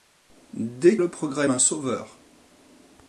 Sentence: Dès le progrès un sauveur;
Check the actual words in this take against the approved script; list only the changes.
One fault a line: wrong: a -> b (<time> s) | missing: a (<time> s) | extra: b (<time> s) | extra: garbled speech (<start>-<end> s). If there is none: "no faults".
no faults